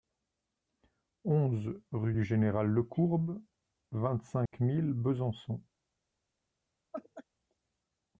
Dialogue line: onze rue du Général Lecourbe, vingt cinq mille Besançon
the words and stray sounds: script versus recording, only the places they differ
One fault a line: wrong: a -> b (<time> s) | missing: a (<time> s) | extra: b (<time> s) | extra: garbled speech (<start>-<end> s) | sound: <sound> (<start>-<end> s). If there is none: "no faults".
sound: dropout (4.5-4.5 s)
sound: laugh (6.9-7.2 s)